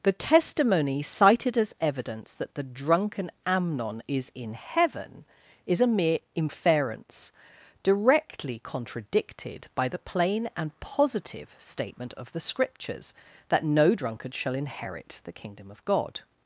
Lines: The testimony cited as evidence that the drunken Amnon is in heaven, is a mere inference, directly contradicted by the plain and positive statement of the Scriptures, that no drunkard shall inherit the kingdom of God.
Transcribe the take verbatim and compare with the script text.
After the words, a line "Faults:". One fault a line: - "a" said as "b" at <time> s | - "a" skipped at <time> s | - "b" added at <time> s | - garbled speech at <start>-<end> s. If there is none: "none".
The testimony cited as evidence that the drunken Amnon is in heaven, is a mere inference, directly contradicted by the plain and positive statement of the Scriptures, that no drunkard shall inherit the kingdom of God.
Faults:
none